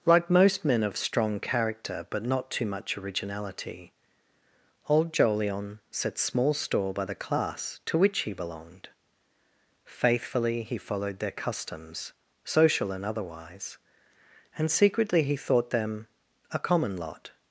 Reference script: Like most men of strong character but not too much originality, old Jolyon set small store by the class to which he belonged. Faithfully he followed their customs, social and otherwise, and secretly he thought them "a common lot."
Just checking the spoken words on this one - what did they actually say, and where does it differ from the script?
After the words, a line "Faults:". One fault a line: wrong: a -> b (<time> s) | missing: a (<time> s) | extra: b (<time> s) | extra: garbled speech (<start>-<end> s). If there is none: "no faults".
Like most men of strong character but not too much originality, old Jolyon set small store by the class to which he belonged. Faithfully he followed their customs, social and otherwise, and secretly he thought them "a common lot."
Faults:
no faults